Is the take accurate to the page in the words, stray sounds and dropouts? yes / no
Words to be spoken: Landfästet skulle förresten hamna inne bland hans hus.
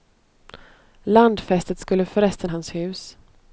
no